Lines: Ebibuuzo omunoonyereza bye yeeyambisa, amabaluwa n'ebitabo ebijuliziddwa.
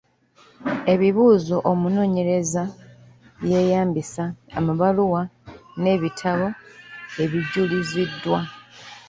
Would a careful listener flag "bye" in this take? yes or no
no